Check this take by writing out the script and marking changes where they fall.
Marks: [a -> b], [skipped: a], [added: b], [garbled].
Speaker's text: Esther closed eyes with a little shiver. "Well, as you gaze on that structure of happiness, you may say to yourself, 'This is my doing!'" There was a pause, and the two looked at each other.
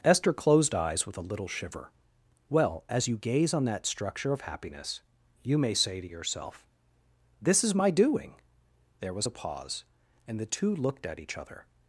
Esther closed eyes with a little shiver. "Well, as you gaze on that structure of happiness, you may say to yourself, 'This is my doing!'" There was a pause, and the two looked at each other.